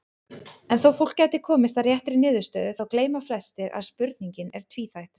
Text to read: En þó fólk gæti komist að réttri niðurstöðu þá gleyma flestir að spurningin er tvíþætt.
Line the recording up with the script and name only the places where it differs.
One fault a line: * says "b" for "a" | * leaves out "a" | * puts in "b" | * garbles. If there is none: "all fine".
all fine